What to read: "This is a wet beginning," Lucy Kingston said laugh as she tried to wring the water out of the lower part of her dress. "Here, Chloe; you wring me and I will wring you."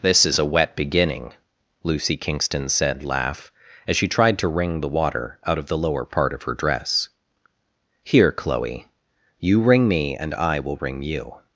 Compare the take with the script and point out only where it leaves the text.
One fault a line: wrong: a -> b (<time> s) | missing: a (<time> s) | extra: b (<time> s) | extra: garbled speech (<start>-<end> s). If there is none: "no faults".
no faults